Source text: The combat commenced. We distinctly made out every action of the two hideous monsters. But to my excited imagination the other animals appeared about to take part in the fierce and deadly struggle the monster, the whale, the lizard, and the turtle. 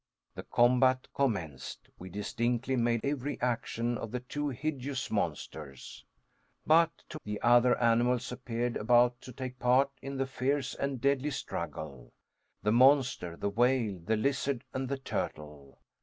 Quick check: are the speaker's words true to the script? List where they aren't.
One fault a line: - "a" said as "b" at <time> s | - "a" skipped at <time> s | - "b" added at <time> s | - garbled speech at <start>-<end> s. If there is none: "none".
- "out" skipped at 3.0 s
- "my excited imagination" skipped at 7.2 s